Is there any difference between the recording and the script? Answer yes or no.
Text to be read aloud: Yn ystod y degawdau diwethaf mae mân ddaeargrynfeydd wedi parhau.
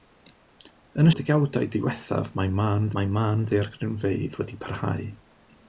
yes